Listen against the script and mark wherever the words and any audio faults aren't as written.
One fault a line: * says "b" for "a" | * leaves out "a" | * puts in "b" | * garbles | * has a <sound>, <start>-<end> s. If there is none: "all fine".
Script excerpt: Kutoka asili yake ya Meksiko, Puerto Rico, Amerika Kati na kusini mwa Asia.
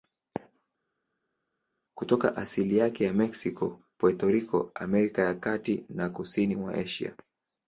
* puts in "ya"